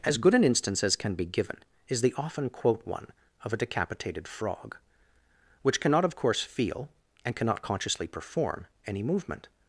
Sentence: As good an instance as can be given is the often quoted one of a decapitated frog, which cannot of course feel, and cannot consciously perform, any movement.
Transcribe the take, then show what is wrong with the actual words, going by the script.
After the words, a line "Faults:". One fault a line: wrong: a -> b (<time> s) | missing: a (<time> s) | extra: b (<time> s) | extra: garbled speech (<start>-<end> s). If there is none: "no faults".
As good an instance as can be given is the often quote one of a decapitated frog, which cannot of course feel, and cannot consciously perform, any movement.
Faults:
wrong: quoted -> quote (2.5 s)